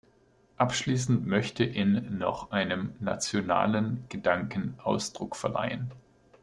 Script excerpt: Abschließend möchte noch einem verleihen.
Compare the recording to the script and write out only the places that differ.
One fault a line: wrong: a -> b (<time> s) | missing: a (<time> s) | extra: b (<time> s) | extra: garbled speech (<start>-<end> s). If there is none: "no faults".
extra: in (1.6 s)
extra: nationalen Gedanken Ausdruck (3.0 s)